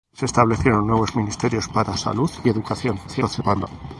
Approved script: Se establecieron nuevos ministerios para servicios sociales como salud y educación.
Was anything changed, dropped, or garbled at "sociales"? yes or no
yes